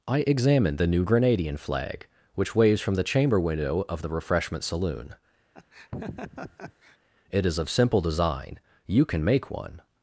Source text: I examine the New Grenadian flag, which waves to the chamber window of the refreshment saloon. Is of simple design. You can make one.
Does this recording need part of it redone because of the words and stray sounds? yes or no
yes